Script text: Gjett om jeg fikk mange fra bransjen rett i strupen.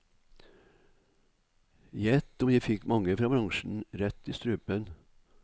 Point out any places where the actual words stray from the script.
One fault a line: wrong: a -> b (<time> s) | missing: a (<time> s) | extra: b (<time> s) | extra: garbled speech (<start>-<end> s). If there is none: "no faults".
no faults